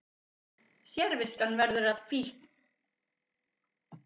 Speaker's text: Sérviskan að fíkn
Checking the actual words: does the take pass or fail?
fail